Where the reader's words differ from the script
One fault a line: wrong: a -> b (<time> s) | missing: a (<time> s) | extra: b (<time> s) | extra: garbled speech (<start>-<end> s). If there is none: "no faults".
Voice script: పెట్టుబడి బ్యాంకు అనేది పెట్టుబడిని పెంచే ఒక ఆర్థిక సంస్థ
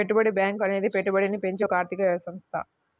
no faults